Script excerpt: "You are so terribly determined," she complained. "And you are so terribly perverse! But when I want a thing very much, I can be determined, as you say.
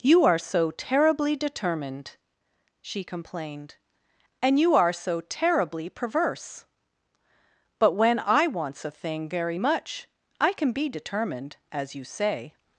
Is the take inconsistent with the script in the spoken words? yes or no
yes